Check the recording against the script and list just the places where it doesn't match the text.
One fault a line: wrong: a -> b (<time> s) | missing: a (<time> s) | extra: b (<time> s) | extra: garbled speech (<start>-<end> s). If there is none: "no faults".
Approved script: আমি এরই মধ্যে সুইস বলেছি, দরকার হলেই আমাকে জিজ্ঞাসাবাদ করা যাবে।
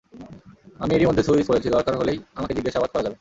no faults